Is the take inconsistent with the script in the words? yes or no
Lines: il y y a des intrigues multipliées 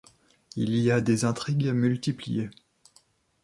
yes